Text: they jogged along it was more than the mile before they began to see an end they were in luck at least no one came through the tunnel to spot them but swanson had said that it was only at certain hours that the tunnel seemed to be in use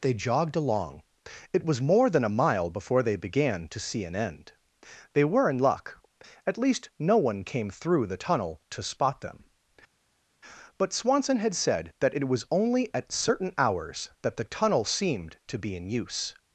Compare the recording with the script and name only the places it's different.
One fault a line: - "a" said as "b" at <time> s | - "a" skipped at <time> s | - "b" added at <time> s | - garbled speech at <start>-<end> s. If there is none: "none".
- "the" said as "a" at 2.2 s